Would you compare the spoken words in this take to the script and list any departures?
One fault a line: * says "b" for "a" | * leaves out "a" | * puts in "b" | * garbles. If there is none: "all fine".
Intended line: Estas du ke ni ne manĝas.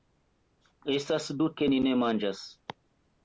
all fine